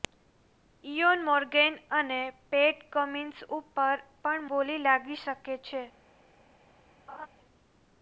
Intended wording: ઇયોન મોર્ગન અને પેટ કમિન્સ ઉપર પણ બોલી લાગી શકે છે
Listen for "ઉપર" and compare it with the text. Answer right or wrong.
right